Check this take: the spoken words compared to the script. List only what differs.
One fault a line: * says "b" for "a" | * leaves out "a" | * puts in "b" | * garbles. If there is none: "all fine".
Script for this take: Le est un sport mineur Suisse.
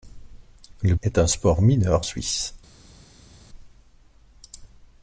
all fine